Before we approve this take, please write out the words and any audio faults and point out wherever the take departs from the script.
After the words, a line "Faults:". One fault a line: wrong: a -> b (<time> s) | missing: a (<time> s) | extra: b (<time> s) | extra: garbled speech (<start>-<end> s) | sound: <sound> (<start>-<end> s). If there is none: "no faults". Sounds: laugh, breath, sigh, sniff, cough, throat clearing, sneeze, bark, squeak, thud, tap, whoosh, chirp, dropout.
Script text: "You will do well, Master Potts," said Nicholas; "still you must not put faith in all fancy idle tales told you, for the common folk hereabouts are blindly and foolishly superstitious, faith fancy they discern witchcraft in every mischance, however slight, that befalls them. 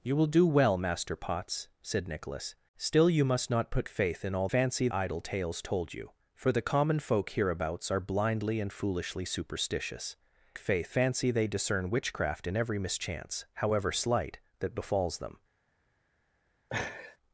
"You will do well, Master Potts," said Nicholas; "still you must not put faith in all fancy idle tales told you, for the common folk hereabouts are blindly and foolishly superstitious, faith fancy they discern witchcraft in every mischance, however slight, that befalls them.
Faults:
sound: laugh (16.7-17.2 s)